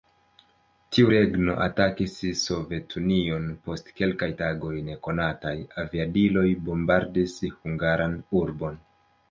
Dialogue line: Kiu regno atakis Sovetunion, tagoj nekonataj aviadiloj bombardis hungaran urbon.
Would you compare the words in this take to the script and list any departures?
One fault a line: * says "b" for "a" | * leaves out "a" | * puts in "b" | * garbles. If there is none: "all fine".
* says "Tiu" for "Kiu"
* puts in "post kelkaj"